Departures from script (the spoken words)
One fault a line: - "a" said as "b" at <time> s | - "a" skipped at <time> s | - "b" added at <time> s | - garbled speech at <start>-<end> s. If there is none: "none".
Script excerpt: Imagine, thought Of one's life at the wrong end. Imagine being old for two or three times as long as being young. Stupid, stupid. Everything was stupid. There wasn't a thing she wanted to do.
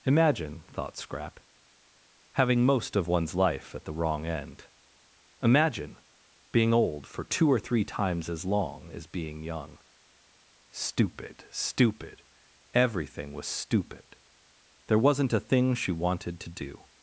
- "Scrap having most" added at 1.0 s